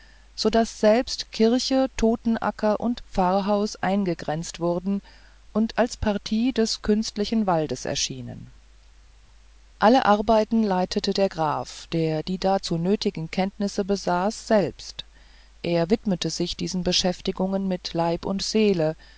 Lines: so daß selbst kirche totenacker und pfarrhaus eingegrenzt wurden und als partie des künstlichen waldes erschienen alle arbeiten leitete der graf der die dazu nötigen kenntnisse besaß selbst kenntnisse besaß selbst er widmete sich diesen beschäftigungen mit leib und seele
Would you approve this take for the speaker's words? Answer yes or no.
no